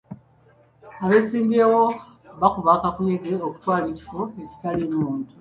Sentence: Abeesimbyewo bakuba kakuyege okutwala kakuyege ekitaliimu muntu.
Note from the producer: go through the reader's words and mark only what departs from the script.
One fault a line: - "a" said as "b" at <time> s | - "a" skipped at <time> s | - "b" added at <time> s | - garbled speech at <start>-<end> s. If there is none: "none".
- "kakuyege" said as "ekifo" at 3.9 s